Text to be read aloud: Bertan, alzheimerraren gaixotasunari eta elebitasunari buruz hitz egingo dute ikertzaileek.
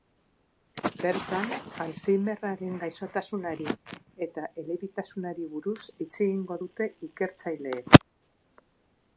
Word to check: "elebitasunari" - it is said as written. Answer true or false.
true